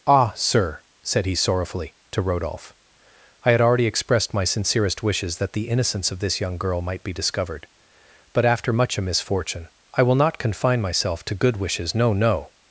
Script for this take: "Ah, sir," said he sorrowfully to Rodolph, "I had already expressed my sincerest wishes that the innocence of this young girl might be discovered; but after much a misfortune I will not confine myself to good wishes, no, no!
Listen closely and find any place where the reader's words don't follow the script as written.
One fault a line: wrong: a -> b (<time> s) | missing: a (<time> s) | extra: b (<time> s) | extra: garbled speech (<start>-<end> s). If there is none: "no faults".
no faults